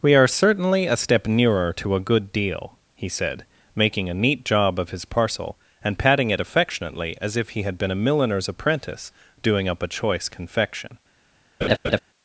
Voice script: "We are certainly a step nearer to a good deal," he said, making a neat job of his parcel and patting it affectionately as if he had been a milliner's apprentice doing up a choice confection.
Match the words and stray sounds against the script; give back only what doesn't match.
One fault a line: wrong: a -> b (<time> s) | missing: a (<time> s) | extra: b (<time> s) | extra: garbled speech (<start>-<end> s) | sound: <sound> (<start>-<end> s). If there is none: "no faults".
sound: laugh (11.6-12.0 s)